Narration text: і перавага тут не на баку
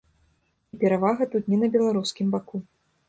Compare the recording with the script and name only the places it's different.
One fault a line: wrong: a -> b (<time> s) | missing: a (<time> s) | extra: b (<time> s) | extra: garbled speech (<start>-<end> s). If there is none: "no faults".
extra: беларускім (1.8 s)